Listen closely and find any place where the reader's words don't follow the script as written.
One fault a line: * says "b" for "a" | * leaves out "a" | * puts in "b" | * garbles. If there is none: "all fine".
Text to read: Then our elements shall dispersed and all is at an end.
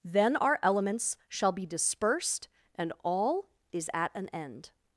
* puts in "be"